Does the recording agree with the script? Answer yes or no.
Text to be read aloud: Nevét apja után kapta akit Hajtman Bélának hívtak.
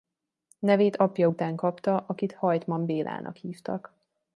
yes